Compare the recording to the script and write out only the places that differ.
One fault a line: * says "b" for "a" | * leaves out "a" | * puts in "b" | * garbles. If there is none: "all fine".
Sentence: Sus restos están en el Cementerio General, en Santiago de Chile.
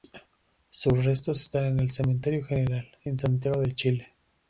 all fine